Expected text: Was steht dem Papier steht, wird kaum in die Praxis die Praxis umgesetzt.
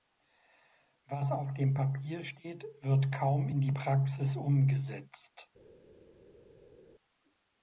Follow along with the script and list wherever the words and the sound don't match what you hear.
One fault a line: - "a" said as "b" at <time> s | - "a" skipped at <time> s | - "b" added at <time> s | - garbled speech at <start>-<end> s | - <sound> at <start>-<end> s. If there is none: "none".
- "steht" said as "auf" at 1.3 s
- "die Praxis" skipped at 4.4 s